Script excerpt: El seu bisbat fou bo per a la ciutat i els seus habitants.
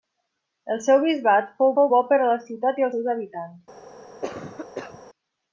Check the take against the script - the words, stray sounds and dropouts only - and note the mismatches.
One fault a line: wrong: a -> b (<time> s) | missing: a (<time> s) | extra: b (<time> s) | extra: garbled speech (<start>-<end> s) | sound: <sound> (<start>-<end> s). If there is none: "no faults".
extra: fou (1.8 s)
missing: els (2.9 s)
sound: cough (4.2-5.0 s)